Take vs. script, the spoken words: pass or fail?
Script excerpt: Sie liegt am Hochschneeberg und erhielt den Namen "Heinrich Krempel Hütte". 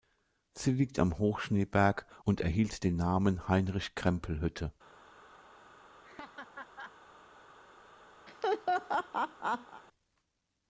pass